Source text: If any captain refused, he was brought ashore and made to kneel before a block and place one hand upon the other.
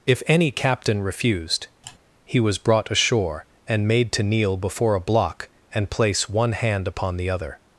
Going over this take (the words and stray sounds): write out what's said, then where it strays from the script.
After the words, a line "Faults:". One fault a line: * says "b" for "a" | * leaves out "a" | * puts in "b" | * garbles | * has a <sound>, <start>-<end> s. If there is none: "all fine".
If any captain refused, he was brought ashore and made to kneel before a block and place one hand upon the other.
Faults:
* has a sigh, 1.8-2.0 s